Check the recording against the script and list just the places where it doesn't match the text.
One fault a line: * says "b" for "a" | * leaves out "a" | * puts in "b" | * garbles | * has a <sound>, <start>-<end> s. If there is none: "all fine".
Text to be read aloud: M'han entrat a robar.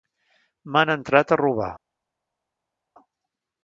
all fine